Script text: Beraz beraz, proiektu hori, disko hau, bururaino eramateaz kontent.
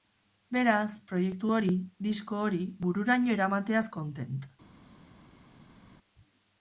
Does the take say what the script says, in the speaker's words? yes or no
no